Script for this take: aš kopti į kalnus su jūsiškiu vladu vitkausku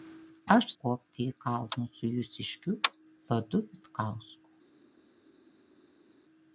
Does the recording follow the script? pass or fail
pass